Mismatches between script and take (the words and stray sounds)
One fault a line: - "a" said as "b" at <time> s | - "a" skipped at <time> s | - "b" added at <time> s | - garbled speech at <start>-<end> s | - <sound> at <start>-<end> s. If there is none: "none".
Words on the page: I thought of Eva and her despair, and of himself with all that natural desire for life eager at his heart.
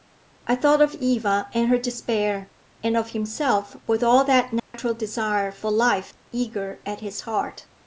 - dropout at 4.6-4.7 s